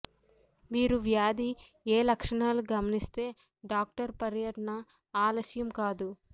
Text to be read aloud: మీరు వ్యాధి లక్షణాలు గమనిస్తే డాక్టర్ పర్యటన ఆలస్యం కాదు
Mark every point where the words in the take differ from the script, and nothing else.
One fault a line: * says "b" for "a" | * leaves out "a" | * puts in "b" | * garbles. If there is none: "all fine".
* puts in "ఏ"